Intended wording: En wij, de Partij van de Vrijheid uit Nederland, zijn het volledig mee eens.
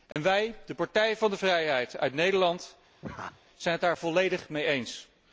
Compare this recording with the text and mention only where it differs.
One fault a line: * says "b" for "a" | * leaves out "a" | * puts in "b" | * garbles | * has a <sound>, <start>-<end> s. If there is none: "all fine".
* has a dropout, 0.1-0.2 s
* has a laugh, 3.0-3.4 s
* puts in "daar"